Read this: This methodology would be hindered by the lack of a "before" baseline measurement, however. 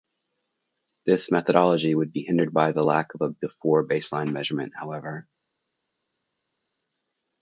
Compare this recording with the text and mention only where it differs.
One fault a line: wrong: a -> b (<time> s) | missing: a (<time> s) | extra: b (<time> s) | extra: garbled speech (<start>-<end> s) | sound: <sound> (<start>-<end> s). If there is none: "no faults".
no faults